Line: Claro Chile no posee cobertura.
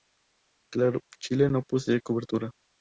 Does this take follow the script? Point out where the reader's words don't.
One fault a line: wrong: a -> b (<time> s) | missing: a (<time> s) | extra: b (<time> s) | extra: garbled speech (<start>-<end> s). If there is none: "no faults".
no faults